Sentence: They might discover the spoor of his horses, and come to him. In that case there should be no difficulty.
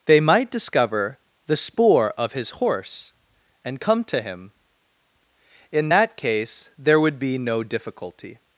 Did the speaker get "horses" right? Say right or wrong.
wrong